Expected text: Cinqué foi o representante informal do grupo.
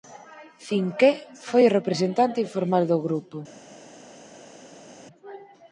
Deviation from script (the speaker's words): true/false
false